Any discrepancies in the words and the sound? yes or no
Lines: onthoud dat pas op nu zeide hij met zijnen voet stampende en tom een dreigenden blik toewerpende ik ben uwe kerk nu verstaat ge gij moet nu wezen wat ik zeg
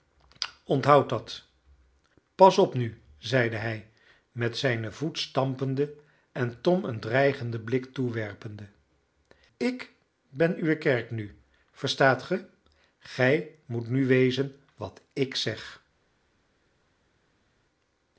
no